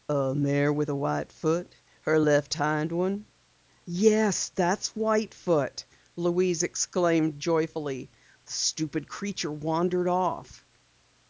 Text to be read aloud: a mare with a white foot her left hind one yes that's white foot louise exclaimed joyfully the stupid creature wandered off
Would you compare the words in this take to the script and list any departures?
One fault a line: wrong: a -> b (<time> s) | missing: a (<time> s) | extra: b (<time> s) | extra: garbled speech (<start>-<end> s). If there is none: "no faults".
no faults